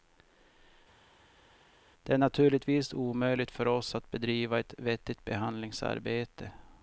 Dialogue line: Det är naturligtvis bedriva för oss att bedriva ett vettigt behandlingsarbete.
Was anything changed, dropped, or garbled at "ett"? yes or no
no